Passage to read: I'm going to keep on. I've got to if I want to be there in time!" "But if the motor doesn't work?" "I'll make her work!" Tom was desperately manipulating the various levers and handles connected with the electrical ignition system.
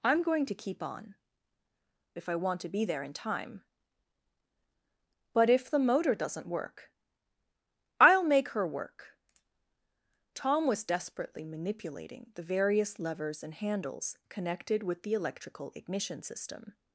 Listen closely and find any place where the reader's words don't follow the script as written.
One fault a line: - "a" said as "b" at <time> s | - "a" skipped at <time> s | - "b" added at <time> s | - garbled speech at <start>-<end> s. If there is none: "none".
- "I've got to" skipped at 1.1 s